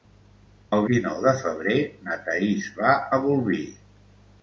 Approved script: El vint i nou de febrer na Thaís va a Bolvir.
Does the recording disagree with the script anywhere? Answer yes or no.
yes